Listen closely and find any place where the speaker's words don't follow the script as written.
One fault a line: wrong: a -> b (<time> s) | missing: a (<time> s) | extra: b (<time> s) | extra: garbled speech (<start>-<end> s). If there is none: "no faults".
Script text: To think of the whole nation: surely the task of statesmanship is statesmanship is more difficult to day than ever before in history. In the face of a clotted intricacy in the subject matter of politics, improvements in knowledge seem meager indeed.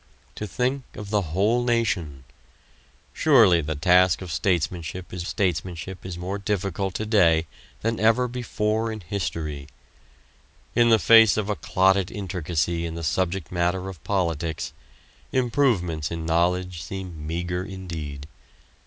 no faults